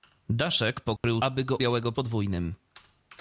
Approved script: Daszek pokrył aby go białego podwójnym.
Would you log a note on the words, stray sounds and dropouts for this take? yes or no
yes